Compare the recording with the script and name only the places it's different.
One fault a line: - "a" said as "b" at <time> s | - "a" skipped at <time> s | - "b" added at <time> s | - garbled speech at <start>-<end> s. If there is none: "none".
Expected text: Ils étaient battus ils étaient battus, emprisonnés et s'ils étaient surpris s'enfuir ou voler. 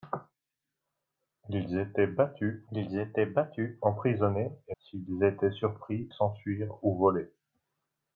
none